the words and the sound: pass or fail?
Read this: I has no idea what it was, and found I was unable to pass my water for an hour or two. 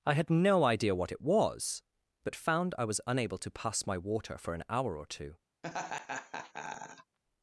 fail